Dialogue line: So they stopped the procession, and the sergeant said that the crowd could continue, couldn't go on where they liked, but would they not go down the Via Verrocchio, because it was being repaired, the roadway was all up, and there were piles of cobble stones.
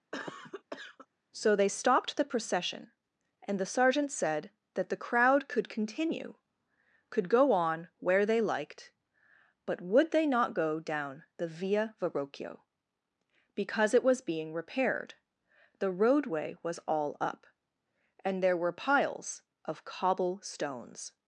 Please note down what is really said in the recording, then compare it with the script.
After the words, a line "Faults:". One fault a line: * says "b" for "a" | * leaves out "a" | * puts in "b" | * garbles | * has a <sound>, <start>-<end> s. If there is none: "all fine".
So they stopped the procession, and the sergeant said that the crowd could continue, could go on where they liked, but would they not go down the Via Verrocchio, because it was being repaired, the roadway was all up, and there were piles of cobble stones.
Faults:
* has a cough, 0.1-1.1 s
* says "could" for "couldn't"